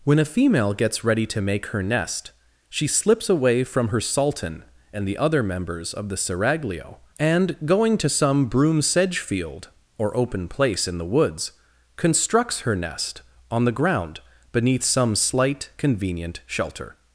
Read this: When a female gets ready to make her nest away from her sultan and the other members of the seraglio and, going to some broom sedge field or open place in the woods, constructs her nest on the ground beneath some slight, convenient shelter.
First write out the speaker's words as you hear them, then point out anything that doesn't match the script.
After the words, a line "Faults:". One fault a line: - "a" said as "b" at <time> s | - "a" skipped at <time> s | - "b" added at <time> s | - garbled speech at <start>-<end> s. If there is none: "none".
When a female gets ready to make her nest she slips away from her sultan and the other members of the seraglio and, going to some broom sedge field or open place in the woods, constructs her nest on the ground beneath some slight, convenient shelter.
Faults:
- "she slips" added at 2.7 s